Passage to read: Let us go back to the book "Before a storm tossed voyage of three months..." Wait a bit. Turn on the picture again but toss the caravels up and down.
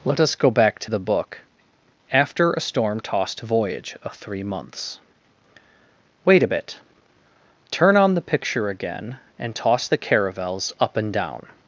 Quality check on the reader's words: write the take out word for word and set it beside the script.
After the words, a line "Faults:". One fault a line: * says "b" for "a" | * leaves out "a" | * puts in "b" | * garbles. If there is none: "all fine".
Let us go back to the book "After a storm tossed voyage of three months..." Wait a bit. Turn on the picture again and toss the caravels up and down.
Faults:
* says "After" for "Before"
* says "and" for "but"